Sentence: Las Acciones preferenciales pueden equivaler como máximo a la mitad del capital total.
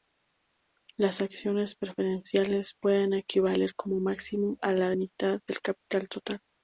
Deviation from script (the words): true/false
false